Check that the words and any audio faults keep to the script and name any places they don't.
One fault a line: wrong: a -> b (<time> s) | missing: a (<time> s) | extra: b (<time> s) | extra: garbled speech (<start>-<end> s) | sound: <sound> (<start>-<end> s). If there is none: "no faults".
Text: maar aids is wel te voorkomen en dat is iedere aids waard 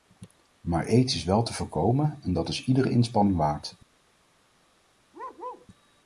wrong: aids -> inspanning (2.9 s)
sound: bark (5.1-5.7 s)